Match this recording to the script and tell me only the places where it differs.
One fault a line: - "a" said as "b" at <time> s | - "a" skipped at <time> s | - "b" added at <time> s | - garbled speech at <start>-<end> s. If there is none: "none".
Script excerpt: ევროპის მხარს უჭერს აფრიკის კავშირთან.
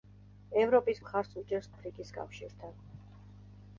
none